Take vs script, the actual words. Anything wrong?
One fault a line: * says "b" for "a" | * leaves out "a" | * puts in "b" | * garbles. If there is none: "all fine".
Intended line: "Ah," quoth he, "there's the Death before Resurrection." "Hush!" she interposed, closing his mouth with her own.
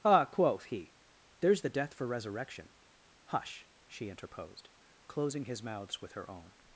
* says "for" for "before"
* says "mouths" for "mouth"